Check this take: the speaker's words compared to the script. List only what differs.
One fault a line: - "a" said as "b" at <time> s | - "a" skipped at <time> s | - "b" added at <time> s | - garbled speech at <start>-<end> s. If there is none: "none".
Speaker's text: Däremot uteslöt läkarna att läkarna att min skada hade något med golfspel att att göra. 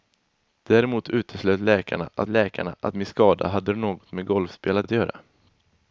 none